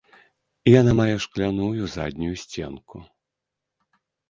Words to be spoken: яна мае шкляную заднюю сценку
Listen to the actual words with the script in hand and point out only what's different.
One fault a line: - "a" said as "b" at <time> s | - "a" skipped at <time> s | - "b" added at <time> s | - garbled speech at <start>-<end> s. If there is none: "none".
none